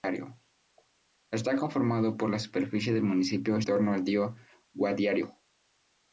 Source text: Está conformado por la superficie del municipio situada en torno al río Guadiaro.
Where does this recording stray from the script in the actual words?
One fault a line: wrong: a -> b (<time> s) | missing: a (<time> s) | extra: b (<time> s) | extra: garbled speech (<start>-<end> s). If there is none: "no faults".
missing: situada en (3.6 s)